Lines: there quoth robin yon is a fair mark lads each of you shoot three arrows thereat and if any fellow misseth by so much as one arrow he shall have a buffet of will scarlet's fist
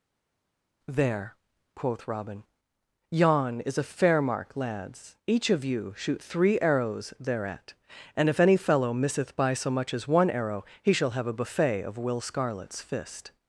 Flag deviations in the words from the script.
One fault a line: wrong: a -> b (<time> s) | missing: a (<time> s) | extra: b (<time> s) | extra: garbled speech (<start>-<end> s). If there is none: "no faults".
no faults